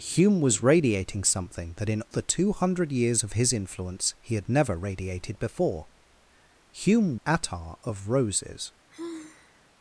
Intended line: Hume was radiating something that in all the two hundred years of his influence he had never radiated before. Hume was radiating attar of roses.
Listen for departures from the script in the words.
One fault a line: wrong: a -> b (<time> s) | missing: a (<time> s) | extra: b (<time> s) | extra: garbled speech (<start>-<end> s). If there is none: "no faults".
missing: all (2.0 s)
missing: was radiating (7.2 s)